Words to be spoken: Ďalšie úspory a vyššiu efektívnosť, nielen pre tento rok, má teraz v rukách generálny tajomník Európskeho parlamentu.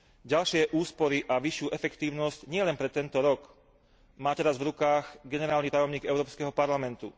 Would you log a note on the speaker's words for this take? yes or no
no